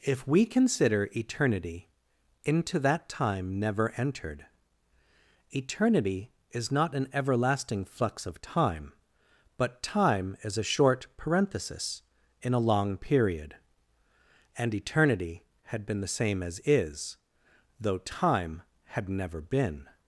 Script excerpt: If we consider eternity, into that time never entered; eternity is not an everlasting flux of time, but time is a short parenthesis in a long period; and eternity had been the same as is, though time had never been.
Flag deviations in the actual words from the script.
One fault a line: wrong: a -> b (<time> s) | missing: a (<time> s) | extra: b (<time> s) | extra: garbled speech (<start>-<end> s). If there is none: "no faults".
no faults